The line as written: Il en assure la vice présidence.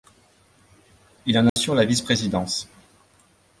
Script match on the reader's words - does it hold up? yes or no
yes